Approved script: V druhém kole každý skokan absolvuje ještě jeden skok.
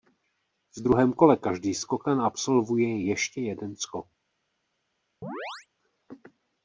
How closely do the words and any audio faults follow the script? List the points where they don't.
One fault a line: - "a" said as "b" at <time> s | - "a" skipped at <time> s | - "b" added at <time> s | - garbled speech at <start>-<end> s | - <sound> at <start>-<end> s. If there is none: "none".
- chirp at 5.2-5.7 s